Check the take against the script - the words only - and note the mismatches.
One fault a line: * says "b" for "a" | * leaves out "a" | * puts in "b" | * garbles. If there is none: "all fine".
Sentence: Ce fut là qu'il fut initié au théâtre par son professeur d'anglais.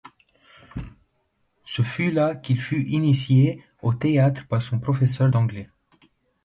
all fine